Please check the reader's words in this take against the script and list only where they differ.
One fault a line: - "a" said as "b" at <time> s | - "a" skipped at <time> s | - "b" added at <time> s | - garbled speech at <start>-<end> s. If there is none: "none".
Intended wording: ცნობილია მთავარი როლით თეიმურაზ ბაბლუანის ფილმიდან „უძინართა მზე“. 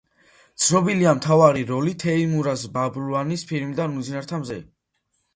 none